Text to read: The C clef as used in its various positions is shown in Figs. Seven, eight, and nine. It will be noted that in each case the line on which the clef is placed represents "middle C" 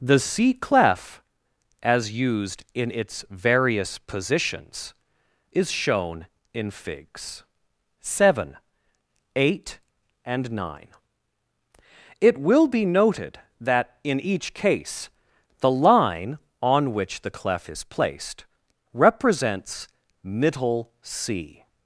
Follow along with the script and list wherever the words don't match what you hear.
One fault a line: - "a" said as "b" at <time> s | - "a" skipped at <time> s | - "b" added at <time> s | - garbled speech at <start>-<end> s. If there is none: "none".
none